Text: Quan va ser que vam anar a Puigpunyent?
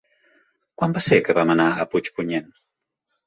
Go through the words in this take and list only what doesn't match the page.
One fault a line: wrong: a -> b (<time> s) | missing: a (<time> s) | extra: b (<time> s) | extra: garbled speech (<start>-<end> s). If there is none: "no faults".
no faults